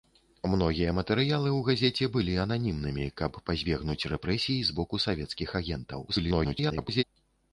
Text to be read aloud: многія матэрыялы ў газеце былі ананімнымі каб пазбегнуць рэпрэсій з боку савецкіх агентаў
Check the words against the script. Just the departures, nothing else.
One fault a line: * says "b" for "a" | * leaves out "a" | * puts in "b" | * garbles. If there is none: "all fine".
* garbles